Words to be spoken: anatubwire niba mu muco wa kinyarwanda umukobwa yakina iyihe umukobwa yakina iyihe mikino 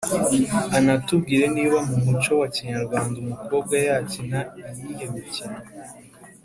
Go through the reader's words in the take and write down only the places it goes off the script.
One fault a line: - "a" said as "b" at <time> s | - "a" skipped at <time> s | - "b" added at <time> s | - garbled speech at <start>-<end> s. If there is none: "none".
- "umukobwa yakina iyihe" skipped at 5.0 s